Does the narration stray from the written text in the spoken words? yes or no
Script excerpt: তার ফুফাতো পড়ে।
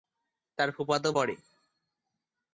no